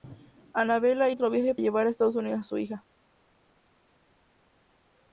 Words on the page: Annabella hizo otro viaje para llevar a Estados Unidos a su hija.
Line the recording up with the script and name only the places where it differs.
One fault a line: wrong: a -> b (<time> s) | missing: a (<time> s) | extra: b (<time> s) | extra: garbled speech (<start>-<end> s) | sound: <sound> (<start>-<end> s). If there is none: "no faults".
missing: hizo (1.1 s)
missing: para (1.6 s)